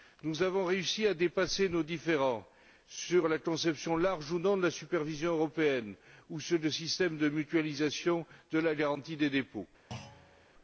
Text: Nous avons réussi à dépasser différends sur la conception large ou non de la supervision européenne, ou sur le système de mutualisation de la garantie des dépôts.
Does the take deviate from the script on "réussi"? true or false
false